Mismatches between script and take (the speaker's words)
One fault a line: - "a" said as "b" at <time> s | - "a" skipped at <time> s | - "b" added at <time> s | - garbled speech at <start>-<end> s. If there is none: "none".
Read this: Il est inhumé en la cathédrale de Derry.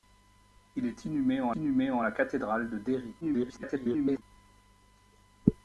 - "inhumé en" added at 1.6 s
- garbled speech at 3.2-4.2 s